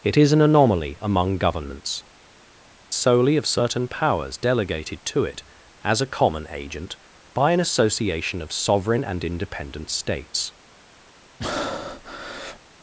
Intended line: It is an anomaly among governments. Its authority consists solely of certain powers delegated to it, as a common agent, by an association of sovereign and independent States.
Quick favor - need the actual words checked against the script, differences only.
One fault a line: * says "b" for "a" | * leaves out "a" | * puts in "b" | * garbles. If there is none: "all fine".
* leaves out "Its authority consists"